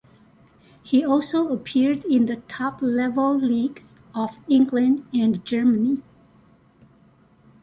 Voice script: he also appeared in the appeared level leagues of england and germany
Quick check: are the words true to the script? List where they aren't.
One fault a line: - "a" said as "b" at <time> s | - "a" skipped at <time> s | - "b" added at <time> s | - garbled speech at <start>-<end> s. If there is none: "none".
- "appeared" said as "top" at 2.5 s